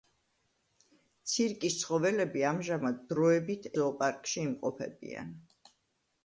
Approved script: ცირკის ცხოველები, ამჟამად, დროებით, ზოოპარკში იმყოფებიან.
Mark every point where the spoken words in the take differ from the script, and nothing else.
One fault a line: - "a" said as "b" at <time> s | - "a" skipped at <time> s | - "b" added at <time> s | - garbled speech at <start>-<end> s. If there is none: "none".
none